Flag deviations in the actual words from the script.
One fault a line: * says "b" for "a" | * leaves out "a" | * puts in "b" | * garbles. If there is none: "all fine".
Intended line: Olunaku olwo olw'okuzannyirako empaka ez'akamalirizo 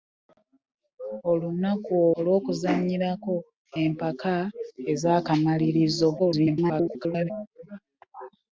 * leaves out "olwo"
* garbles